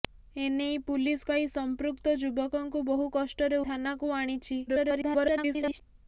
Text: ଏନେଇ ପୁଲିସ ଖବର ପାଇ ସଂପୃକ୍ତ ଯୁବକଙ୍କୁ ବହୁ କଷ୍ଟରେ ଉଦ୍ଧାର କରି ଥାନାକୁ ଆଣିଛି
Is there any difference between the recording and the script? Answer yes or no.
yes